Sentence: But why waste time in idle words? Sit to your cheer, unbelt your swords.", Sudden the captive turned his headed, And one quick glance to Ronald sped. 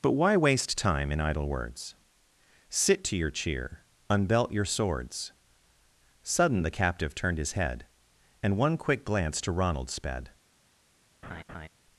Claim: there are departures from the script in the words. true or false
true